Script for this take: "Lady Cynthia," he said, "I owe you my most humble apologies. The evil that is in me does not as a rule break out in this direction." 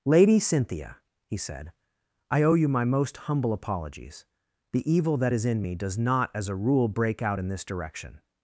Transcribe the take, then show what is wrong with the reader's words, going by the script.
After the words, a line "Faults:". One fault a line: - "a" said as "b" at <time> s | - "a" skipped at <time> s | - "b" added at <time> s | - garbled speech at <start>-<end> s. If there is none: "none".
"Lady Cynthia," he said, "I owe you my most humble apologies. The evil that is in me does not as a rule break out in this direction."
Faults:
none